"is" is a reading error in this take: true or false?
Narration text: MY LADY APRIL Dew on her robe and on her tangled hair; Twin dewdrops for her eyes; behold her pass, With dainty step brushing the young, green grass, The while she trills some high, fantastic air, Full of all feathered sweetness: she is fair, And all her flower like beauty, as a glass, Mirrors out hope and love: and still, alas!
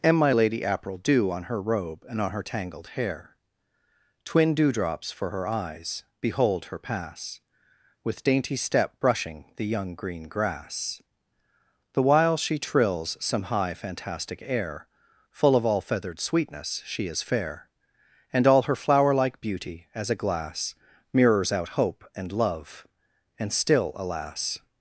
false